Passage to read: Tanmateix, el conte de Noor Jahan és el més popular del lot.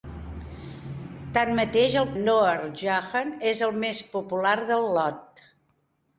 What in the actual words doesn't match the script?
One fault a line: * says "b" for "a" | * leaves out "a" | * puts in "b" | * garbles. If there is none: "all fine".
* leaves out "conte de"